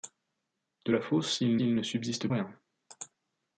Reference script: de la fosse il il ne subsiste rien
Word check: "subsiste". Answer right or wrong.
right